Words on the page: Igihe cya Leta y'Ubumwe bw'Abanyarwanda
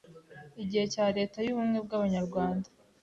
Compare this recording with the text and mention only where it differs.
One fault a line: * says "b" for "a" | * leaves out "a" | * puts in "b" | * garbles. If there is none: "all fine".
all fine